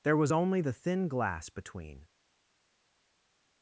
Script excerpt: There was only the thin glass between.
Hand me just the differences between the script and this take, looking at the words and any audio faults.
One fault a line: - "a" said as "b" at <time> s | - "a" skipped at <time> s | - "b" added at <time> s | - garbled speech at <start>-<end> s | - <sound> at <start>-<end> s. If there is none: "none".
none